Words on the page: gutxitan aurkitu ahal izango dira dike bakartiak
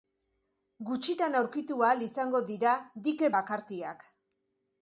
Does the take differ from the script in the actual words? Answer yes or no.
no